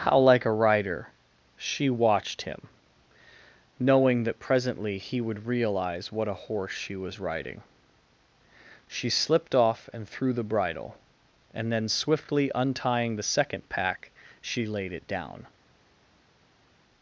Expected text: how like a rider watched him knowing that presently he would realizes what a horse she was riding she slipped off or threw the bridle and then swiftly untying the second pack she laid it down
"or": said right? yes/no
no